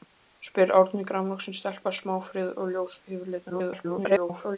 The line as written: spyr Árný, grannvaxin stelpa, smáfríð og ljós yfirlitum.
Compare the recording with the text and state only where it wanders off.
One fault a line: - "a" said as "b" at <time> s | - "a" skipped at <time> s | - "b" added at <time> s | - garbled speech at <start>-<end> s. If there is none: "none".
- garbled speech at 3.5-4.6 s